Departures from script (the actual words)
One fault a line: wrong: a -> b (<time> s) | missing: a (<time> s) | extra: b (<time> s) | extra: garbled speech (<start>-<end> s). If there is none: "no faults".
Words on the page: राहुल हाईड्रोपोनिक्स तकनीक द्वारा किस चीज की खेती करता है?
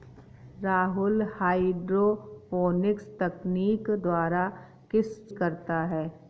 missing: चीज की खेती (5.3 s)